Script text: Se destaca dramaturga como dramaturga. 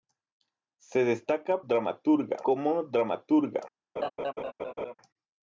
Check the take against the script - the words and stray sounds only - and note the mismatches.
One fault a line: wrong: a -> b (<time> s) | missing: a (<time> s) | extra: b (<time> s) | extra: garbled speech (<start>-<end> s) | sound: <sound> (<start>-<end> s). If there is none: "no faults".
sound: laugh (4.0-4.9 s)